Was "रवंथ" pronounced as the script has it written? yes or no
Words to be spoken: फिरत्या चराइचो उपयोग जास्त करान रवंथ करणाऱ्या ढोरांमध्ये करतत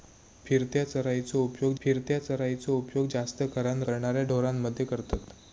no